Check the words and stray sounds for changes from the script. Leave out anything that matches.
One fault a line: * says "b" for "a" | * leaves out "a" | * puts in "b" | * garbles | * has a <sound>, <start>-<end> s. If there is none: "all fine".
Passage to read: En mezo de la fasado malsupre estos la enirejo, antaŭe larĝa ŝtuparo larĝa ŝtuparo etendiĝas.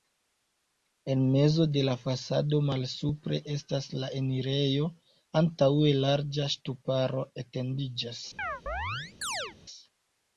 * says "estas" for "estos"
* leaves out "larĝa ŝtuparo"
* has a chirp, 8.4-9.6 s